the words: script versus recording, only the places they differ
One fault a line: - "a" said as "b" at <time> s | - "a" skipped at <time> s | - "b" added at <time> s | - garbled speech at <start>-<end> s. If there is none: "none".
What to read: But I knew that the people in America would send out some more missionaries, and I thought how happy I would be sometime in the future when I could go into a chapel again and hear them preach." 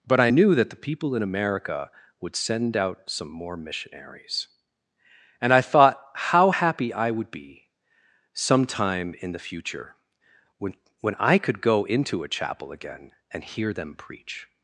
- "when" added at 11.0 s